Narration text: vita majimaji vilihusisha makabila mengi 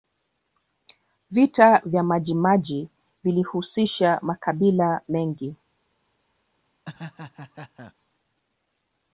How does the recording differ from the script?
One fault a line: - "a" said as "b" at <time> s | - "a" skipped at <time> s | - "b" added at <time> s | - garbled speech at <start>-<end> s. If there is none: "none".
- "vya" added at 1.9 s